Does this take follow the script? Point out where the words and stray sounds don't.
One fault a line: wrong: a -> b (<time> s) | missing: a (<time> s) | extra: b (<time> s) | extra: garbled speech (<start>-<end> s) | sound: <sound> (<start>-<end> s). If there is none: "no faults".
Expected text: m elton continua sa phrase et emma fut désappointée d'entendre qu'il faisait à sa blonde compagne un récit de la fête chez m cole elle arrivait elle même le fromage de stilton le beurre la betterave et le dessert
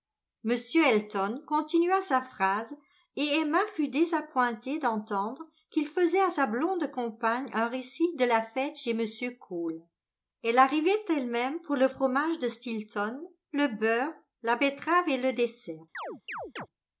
extra: pour (11.6 s)
sound: chirp (15.9-16.7 s)